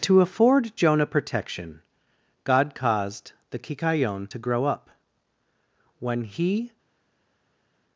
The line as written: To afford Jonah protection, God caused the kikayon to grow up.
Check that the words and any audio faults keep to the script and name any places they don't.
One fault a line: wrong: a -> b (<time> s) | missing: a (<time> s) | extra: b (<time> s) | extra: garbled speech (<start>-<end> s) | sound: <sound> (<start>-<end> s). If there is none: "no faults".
extra: When he (6.0 s)